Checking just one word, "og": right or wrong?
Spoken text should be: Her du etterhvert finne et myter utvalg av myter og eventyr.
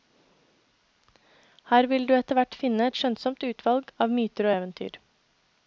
right